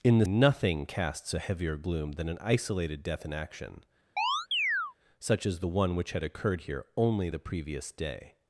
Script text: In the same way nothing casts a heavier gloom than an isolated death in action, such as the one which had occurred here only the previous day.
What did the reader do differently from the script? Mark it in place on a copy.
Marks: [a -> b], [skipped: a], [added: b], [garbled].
In the [skipped: same way] nothing casts a heavier gloom than an isolated death in action, such as the one which had occurred here only the previous day.